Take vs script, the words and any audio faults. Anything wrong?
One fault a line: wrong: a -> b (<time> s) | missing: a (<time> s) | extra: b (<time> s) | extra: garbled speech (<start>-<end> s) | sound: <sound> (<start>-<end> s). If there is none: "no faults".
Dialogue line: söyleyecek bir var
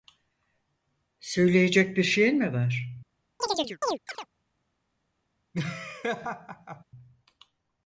extra: şeyin mi (2.0 s)
sound: chirp (3.4-4.3 s)
sound: laugh (5.5-6.8 s)